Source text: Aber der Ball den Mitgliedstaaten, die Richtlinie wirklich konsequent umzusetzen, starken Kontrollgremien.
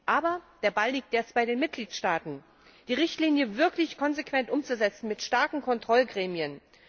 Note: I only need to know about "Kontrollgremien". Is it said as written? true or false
true